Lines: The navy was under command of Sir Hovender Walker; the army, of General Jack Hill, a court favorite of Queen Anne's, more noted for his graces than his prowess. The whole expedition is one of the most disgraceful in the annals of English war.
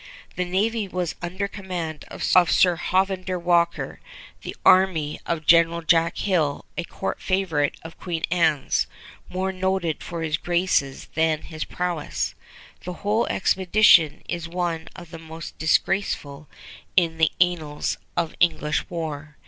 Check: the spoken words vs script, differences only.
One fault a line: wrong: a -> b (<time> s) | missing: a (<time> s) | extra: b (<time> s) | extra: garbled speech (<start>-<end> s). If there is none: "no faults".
no faults